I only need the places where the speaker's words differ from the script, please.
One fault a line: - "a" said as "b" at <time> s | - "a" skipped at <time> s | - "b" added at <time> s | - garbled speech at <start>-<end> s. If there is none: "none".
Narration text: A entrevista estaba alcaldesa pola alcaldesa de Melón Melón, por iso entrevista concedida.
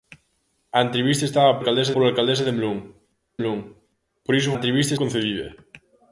none